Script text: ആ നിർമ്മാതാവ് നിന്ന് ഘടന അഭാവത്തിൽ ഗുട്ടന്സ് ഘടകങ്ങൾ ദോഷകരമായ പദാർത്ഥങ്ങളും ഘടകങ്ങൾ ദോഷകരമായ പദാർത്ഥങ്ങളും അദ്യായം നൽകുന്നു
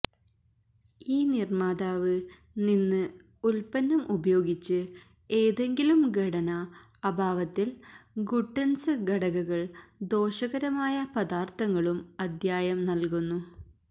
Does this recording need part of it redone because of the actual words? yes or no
yes